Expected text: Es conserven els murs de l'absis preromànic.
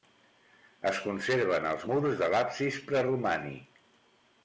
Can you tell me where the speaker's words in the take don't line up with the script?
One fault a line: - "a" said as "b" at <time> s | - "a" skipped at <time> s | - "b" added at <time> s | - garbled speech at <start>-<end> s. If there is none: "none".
none